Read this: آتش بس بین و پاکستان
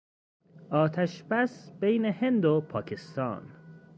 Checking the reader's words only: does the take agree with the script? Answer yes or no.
no